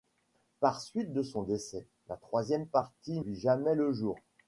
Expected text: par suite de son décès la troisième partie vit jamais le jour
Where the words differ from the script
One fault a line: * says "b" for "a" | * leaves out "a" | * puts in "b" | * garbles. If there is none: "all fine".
all fine